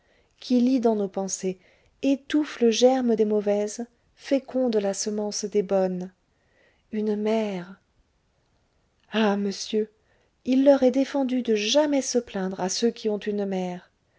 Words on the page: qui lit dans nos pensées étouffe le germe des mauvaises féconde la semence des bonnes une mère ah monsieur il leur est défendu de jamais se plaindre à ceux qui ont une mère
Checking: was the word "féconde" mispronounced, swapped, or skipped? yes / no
no